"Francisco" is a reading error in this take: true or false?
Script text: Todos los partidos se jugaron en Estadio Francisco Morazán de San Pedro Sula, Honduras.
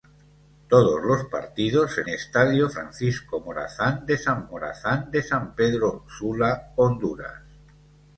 true